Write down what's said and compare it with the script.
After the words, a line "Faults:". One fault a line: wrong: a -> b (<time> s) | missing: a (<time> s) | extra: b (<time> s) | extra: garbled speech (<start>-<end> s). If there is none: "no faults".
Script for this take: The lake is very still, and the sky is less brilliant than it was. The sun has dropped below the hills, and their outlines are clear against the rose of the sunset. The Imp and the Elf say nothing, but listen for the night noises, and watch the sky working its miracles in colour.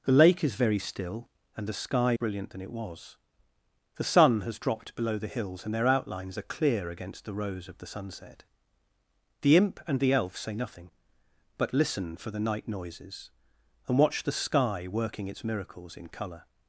The lake is very still, and the sky brilliant than it was. The sun has dropped below the hills, and their outlines are clear against the rose of the sunset. The Imp and the Elf say nothing, but listen for the night noises, and watch the sky working its miracles in colour.
Faults:
missing: is less (2.1 s)